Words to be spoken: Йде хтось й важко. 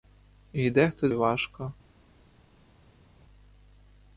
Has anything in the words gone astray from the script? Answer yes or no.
no